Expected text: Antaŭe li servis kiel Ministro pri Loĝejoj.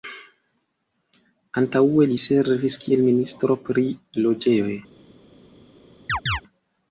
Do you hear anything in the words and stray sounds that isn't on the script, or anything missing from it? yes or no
yes